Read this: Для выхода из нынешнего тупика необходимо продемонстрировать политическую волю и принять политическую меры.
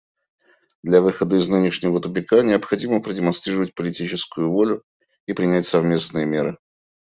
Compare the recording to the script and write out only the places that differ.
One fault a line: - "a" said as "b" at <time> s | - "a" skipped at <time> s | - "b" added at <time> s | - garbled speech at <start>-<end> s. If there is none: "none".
- "политическую" said as "совместные" at 5.7 s